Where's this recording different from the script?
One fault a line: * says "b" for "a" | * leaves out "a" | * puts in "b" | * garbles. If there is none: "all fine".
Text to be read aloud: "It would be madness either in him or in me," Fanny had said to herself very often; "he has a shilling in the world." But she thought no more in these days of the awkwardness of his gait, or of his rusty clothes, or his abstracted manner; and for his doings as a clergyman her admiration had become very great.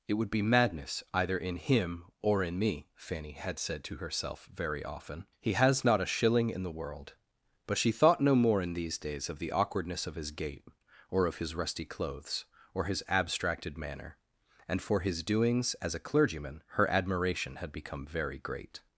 * puts in "not"